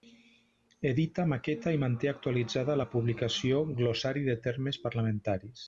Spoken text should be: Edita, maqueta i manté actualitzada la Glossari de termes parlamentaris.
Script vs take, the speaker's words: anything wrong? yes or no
yes